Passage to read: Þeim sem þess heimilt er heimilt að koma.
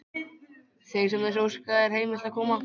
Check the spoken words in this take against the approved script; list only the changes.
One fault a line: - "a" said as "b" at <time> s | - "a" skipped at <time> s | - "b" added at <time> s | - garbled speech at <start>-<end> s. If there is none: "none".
- "heimilt" said as "óska" at 1.5 s